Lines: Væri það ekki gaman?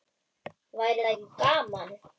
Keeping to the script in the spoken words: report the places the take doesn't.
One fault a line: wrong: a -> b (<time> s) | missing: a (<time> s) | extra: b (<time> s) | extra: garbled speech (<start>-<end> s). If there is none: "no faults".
no faults